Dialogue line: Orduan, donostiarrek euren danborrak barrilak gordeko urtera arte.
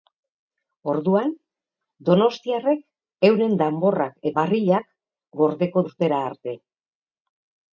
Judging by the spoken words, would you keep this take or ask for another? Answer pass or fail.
pass